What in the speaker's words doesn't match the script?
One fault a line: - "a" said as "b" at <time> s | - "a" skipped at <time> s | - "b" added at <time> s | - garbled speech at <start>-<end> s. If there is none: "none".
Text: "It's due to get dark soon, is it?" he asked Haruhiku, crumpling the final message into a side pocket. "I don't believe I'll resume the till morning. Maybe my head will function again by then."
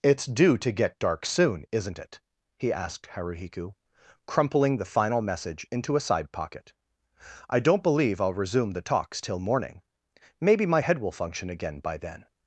- "is" said as "isn't" at 1.7 s
- "talks" added at 8.8 s